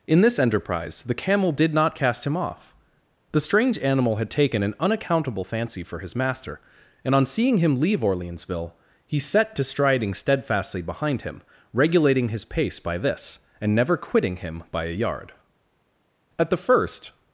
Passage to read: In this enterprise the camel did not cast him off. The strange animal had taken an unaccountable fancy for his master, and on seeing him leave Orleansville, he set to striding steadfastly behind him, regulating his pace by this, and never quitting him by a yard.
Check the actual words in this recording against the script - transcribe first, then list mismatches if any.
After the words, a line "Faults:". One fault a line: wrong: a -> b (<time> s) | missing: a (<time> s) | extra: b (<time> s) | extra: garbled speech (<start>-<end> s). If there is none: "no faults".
In this enterprise the camel did not cast him off. The strange animal had taken an unaccountable fancy for his master, and on seeing him leave Orleansville, he set to striding steadfastly behind him, regulating his pace by this, and never quitting him by a yard. At the first
Faults:
extra: At the first (16.4 s)